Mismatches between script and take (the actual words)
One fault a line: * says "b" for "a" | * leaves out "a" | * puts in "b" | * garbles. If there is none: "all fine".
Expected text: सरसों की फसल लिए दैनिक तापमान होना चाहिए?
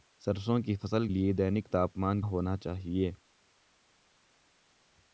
all fine